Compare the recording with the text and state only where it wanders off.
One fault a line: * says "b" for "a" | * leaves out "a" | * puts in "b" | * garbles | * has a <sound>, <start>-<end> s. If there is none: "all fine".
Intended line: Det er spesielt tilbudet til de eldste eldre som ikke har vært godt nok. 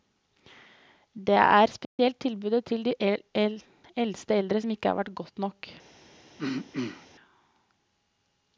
* has a dropout, 1.8-2.0 s
* has a throat clearing, 6.4-7.1 s